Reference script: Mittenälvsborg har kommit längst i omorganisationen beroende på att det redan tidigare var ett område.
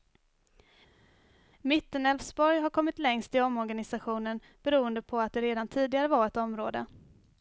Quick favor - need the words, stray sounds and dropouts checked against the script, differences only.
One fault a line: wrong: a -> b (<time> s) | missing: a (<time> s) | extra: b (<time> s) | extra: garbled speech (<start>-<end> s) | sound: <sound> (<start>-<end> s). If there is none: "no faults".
no faults